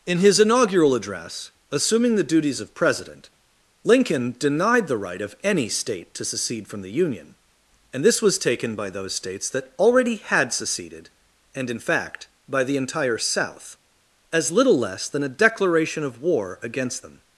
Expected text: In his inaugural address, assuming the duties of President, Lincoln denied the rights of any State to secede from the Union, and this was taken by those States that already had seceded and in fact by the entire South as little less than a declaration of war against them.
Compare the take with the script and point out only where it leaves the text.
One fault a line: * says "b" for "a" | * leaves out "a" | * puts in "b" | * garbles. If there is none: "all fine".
* says "right" for "rights"